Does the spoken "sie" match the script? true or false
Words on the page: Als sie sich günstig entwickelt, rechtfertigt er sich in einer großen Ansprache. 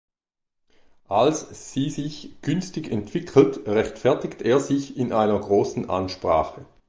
true